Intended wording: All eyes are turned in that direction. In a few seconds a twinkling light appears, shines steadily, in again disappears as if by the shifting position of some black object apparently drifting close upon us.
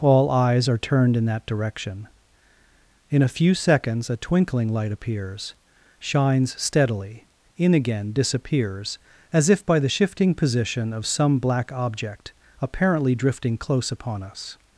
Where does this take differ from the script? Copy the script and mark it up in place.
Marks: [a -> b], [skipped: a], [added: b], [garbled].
All eyes are turned in that direction. In a few seconds a twinkling light appears, shines steadily, in again disappears as if by the shifting position of some black object apparently drifting close upon us.